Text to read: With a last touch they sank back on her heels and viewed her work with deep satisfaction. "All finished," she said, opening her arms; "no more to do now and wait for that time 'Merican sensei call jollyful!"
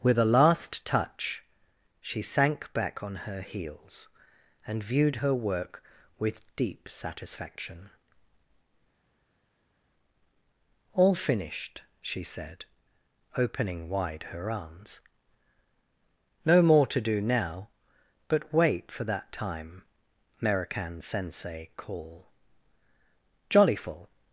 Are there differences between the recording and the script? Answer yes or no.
yes